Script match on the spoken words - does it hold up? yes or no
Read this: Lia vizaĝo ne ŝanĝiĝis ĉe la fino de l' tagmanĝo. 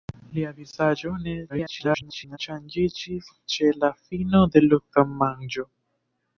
no